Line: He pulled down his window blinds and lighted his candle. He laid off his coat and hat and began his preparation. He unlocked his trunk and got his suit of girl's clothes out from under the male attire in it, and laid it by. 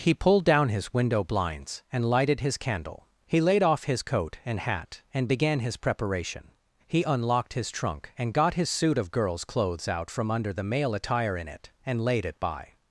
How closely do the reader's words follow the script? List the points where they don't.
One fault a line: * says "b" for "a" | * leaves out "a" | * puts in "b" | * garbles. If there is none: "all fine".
all fine